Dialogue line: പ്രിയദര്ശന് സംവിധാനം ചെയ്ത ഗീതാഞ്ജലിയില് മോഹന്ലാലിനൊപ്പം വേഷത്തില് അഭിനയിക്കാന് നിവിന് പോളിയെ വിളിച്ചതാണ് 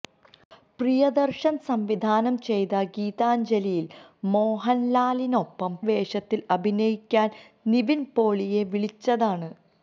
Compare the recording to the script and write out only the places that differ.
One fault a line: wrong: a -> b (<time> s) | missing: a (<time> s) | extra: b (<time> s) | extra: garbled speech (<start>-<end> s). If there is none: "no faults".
no faults